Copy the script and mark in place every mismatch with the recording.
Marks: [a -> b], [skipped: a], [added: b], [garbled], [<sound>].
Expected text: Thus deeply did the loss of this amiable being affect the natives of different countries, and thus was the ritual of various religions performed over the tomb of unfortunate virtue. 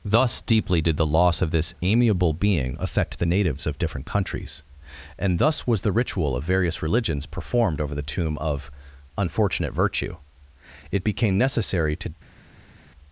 Thus deeply did the loss of this amiable being affect the natives of different countries, and thus was the ritual of various religions performed over the tomb of unfortunate virtue. [added: It became necessary to]